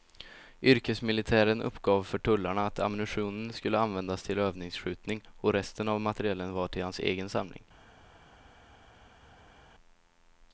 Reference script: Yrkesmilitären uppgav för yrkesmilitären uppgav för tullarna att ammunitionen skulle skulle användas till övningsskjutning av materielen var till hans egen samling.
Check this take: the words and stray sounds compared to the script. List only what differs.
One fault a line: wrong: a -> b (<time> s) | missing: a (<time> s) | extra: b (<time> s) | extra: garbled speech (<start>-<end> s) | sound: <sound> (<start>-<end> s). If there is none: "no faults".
missing: yrkesmilitären uppgav för (2.2 s)
missing: skulle (3.8 s)
extra: och resten (5.4 s)